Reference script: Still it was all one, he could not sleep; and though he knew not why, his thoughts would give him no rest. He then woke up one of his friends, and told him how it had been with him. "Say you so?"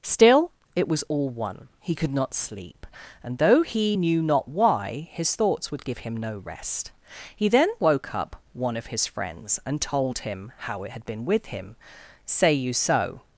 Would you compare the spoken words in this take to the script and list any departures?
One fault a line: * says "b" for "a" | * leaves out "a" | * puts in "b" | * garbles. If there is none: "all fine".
all fine